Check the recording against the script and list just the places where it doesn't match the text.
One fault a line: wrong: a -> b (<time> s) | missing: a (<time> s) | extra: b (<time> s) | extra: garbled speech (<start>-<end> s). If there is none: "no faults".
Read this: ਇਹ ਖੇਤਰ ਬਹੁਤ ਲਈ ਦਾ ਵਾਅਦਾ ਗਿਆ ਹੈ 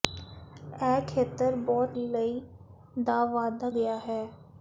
no faults